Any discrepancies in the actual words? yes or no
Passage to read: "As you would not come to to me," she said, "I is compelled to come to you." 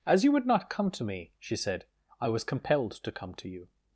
yes